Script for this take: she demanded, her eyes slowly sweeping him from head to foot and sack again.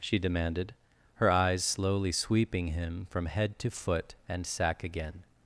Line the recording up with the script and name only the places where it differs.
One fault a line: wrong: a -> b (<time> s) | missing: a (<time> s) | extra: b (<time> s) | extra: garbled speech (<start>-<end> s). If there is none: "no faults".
no faults